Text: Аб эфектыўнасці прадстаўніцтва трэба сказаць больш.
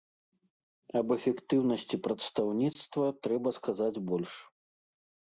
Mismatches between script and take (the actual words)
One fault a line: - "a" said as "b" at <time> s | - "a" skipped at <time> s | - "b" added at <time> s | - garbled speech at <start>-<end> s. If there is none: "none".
none